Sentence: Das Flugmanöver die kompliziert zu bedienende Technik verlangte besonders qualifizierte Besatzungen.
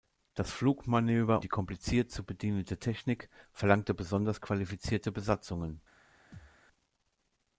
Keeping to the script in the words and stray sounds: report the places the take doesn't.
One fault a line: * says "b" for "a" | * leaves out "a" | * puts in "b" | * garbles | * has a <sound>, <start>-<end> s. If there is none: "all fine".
* has a thud, 6.3-6.6 s